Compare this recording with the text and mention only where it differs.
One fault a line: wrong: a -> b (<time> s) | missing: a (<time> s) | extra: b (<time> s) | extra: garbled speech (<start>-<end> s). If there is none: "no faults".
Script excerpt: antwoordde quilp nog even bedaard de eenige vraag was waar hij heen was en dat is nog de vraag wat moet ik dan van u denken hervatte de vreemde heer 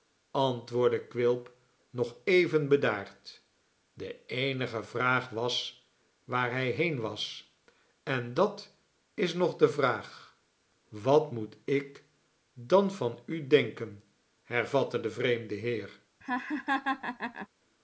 no faults